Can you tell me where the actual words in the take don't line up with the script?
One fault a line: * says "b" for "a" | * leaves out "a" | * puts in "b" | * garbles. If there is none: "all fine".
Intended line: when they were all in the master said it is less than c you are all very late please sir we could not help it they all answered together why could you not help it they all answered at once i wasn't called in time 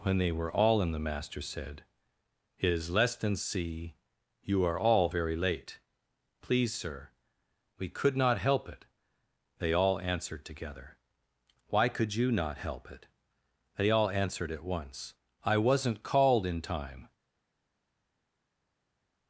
all fine